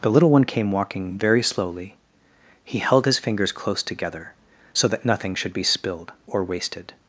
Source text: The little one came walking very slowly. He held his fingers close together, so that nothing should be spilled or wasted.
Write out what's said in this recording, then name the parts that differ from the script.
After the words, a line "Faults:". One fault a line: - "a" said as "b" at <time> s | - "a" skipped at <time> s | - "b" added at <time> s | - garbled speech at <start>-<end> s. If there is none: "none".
The little one came walking very slowly. He held his fingers close together, so that nothing should be spilled or wasted.
Faults:
none